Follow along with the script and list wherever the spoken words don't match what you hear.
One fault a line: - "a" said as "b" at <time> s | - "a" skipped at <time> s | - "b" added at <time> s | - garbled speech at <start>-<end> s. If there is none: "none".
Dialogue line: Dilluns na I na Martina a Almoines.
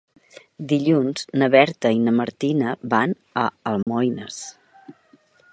- "Berta" added at 1.6 s
- "van" added at 3.0 s